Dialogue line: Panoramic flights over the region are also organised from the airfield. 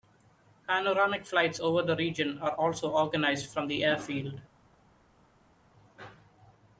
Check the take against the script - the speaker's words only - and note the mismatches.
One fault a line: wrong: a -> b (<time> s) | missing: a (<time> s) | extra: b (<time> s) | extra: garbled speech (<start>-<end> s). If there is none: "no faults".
no faults